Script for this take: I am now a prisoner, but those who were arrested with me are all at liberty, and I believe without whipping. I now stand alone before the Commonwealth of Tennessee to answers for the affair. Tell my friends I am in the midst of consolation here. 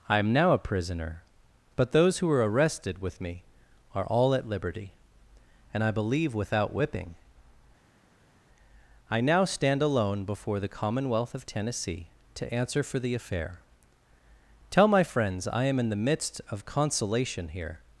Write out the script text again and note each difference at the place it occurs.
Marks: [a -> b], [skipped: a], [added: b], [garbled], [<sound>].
I am now a prisoner, but those who were arrested with me are all at liberty, and I believe without whipping. I now stand alone before the Commonwealth of Tennessee to [answers -> answer] for the affair. Tell my friends I am in the midst of consolation here.